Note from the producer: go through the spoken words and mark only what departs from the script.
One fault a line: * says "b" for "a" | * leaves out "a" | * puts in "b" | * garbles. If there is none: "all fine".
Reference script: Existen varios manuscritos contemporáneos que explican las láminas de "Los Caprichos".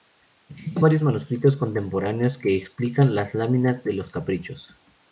all fine